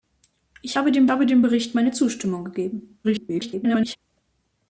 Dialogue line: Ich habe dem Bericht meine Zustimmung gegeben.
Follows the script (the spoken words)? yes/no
no